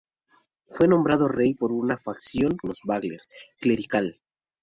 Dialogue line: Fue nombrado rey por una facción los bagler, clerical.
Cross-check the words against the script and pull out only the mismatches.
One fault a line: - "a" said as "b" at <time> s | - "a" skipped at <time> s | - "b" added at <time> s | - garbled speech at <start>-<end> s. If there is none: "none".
none